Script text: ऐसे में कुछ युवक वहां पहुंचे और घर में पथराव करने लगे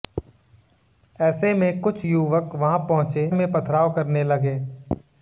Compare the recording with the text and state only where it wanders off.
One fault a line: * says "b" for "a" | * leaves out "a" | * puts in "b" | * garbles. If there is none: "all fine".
* leaves out "और घर"